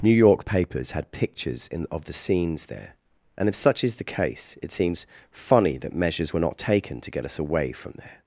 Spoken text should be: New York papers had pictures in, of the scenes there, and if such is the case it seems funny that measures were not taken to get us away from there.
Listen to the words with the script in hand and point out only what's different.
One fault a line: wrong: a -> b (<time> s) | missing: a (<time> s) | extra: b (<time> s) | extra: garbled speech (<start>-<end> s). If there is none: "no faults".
no faults